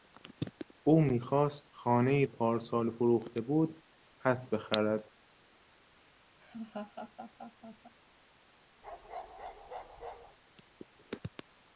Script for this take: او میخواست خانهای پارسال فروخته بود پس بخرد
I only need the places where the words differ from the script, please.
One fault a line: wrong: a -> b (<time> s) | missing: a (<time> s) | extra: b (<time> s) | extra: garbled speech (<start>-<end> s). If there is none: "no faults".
no faults